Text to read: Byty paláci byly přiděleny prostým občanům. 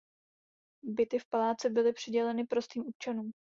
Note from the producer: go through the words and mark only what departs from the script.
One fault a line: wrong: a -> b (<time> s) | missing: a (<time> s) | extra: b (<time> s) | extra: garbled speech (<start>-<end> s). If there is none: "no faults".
extra: v (1.2 s)